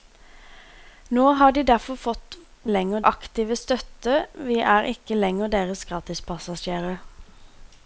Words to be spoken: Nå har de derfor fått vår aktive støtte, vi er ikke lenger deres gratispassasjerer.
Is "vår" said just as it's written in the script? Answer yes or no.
no